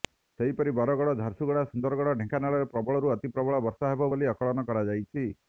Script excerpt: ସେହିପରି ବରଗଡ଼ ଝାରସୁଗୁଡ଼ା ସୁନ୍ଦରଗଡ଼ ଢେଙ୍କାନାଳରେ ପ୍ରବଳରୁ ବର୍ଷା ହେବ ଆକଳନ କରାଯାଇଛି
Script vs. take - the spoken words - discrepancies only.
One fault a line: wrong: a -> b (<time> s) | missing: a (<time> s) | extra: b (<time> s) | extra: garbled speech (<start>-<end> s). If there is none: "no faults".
extra: ଅତି ପ୍ରବଳ (3.2 s)
extra: ବୋଲି (4.1 s)